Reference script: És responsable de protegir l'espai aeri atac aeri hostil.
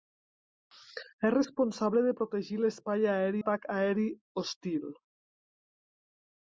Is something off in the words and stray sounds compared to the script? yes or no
no